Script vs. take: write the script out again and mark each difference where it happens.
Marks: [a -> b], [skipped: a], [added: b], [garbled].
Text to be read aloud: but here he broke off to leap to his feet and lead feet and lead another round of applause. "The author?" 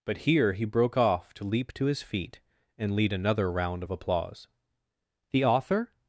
but here he broke off to leap to his feet and lead [skipped: feet and lead] another round of applause. "The author?"